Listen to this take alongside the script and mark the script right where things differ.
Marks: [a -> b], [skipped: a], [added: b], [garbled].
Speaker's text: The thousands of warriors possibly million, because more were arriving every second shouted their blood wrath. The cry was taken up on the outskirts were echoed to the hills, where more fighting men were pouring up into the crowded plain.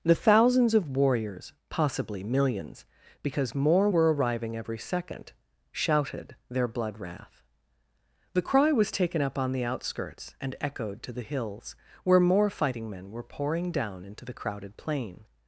The thousands of warriors possibly [million, -> millions] because more were arriving every second shouted their blood wrath. The cry was taken up on the outskirts [were -> and] echoed to the hills, where more fighting men were pouring [up -> down] into the crowded plain.